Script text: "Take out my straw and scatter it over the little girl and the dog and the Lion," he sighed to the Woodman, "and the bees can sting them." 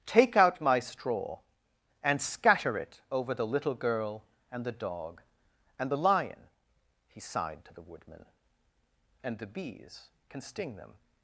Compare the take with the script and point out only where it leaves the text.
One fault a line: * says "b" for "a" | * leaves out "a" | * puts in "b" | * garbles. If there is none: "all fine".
all fine